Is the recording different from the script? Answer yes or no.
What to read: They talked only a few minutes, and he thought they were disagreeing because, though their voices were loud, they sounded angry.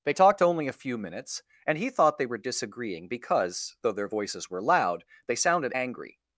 no